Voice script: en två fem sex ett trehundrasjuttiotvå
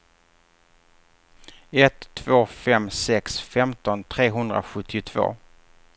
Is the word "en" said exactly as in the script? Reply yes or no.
no